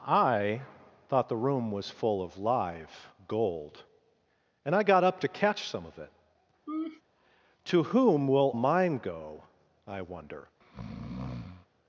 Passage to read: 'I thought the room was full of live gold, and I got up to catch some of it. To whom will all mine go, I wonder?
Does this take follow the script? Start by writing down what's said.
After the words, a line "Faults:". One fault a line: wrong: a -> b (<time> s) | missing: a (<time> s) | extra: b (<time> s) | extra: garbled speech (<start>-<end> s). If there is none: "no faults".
'I thought the room was full of live gold, and I got up to catch some of it. To whom will mine go, I wonder?
Faults:
missing: all (8.5 s)